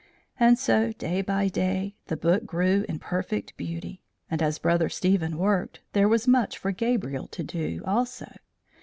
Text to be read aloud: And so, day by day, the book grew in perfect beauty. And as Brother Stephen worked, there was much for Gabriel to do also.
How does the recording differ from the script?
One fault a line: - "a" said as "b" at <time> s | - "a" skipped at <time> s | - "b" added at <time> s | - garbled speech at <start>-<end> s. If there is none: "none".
none